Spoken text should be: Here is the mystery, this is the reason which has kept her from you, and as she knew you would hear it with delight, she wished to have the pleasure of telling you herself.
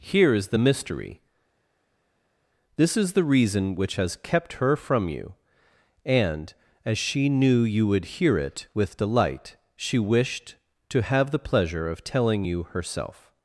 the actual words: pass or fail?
pass